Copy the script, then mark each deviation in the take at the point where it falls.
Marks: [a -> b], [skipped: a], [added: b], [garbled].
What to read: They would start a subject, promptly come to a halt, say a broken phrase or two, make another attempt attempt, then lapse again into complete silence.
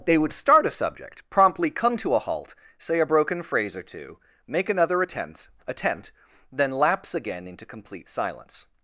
They would start a subject, promptly come to a halt, say a broken phrase or two, make another attempt attempt, then lapse again into complete silence.